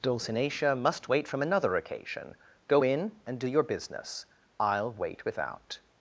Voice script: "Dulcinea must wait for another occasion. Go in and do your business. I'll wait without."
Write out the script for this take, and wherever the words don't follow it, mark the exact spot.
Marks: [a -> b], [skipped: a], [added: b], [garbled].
"Dulcinea must wait [for -> from] another occasion. Go in and do your business. I'll wait without."